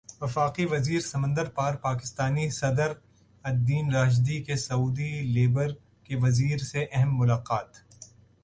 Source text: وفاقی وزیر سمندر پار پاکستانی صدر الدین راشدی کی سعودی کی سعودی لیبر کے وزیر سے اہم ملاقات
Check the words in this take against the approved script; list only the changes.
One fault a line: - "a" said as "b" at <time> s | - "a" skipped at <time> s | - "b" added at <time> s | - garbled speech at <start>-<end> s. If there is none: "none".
- "کی سعودی" skipped at 5.1 s